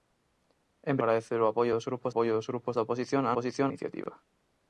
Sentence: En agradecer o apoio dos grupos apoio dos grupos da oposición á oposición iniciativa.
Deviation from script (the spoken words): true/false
false